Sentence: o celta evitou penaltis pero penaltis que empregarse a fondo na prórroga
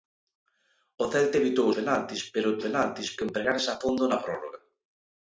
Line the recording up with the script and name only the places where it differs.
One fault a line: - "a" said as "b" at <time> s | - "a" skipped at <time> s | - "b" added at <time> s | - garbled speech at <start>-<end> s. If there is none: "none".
none